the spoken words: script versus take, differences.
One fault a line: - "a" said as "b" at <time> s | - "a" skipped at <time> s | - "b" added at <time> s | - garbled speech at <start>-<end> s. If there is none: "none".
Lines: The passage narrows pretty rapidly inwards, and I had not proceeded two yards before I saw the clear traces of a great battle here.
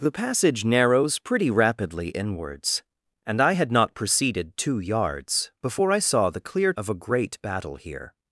- "traces" skipped at 6.7 s